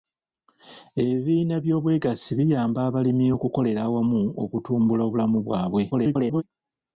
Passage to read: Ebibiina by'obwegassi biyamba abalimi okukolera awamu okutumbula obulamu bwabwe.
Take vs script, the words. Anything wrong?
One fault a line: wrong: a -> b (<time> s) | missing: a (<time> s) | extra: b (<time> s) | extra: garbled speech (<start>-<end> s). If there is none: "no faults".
extra: garbled speech (5.9-6.4 s)